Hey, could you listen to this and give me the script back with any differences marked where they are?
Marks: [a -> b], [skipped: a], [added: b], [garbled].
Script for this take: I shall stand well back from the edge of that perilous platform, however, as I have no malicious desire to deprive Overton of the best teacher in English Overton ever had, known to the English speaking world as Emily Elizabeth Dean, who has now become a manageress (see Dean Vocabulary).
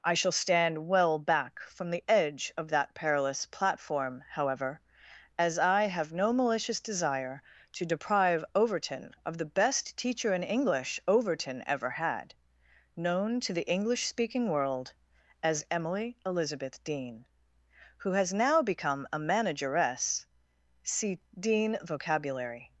I shall stand well back from the edge of that perilous platform, however, as I have no malicious desire to deprive Overton of the best teacher in English Overton ever had, known to the English speaking world as Emily Elizabeth Dean, who has now become a manageress (see Dean Vocabulary).